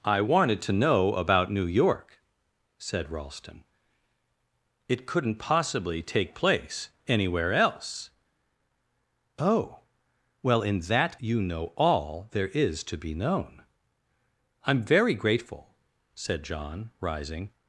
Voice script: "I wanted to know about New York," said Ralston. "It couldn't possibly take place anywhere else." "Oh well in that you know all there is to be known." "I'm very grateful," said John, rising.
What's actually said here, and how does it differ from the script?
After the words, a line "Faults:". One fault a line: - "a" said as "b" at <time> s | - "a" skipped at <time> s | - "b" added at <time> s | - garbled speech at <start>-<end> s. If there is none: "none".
"I wanted to know about New York," said Ralston. "It couldn't possibly take place anywhere else." "Oh well in that you know all there is to be known." "I'm very grateful," said John, rising.
Faults:
none